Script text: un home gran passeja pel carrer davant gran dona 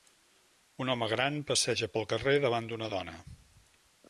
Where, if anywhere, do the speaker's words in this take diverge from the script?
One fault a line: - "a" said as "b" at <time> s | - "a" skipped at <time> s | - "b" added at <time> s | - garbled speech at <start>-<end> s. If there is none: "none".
- "gran" said as "d'una" at 2.7 s